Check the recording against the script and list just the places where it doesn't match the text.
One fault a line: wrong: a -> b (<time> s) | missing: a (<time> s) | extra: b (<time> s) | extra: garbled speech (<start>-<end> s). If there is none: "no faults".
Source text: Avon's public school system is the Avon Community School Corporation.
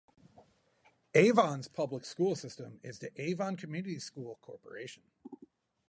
no faults